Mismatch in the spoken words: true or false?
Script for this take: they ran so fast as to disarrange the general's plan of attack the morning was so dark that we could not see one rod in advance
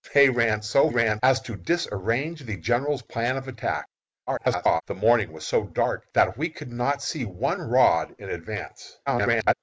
true